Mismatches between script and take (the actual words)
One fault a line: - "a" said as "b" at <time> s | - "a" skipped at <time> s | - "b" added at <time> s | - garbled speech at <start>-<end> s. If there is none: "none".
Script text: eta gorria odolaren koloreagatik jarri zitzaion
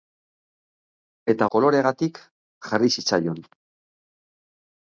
- "gorria odolaren" skipped at 1.5 s